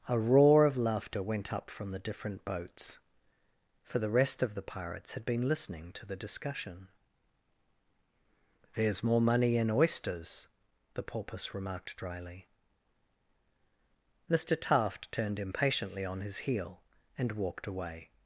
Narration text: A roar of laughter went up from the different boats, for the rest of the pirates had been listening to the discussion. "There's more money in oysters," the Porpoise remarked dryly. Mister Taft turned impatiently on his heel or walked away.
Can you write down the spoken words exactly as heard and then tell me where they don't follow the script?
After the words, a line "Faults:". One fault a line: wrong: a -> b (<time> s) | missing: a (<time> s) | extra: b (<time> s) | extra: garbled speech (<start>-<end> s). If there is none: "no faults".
A roar of laughter went up from the different boats, for the rest of the pirates had been listening to the discussion. "There's more money in oysters," the Porpoise remarked dryly. Mister Taft turned impatiently on his heel and walked away.
Faults:
wrong: or -> and (17.1 s)